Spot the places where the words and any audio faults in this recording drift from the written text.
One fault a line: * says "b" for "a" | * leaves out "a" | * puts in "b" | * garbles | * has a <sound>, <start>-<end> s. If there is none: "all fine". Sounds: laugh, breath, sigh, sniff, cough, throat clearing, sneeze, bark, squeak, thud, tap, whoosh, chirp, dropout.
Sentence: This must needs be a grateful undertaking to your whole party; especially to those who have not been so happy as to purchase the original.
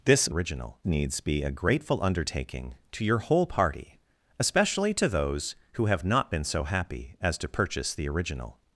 * says "original" for "must"